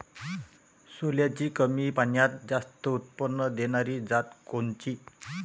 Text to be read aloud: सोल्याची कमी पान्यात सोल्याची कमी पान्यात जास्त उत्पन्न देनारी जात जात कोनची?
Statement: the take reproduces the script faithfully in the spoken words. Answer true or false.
false